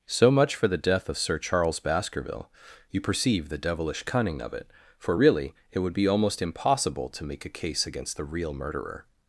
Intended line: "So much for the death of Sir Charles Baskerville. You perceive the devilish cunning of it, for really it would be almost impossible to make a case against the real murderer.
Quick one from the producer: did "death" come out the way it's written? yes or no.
yes